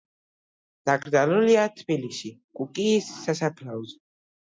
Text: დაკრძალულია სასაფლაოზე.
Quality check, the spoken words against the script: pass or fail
fail